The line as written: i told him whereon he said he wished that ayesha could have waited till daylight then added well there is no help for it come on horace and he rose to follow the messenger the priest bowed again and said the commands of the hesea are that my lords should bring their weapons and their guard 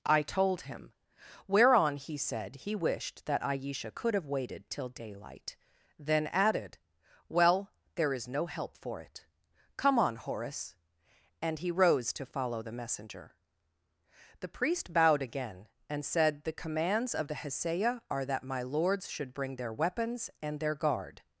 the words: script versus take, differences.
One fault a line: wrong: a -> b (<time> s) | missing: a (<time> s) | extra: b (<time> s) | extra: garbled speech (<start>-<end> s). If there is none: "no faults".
no faults